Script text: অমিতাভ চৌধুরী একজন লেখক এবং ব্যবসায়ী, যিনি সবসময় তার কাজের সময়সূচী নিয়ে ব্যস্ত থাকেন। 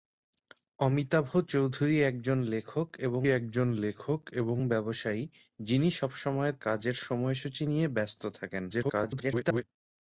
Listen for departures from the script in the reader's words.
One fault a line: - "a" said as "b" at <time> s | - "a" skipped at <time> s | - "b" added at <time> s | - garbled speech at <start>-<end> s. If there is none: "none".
- "একজন লেখক এবং" added at 3.3 s
- "তার" skipped at 6.5 s
- garbled speech at 8.7-9.6 s